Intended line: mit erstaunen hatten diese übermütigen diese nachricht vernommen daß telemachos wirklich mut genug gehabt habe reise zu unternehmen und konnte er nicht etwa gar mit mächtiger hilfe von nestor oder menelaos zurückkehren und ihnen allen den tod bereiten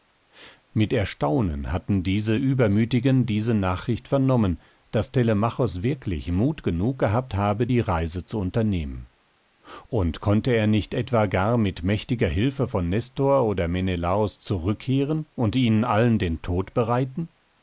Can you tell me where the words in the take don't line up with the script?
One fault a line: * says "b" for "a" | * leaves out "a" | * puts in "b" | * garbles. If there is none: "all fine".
* puts in "die"